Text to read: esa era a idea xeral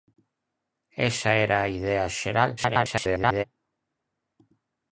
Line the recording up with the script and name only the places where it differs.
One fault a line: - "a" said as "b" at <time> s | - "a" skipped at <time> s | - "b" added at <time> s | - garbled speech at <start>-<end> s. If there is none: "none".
- garbled speech at 2.6-3.4 s